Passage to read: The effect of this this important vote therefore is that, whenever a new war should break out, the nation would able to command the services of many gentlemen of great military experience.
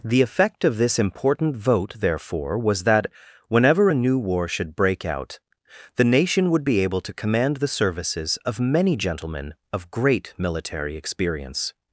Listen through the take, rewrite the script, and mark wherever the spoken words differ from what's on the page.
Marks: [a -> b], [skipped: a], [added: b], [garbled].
The effect of this [skipped: this] important vote therefore [is -> was] that, whenever a new war should break out, the nation would [added: be] able to command the services of many gentlemen of great military experience.